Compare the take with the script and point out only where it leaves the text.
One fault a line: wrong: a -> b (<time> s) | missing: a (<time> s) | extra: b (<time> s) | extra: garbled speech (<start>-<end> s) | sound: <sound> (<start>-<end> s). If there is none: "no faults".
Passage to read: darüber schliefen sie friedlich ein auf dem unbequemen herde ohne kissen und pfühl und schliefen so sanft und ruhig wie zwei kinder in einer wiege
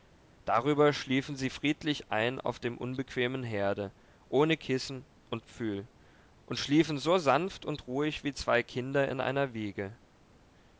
no faults